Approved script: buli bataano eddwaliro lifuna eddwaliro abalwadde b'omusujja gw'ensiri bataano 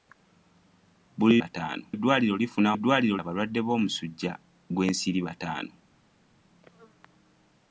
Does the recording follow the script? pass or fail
pass